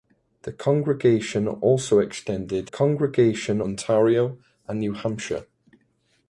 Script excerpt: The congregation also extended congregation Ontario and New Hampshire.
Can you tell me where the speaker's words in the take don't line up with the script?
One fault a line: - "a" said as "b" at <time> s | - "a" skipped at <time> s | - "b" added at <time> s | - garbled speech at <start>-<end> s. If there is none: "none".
none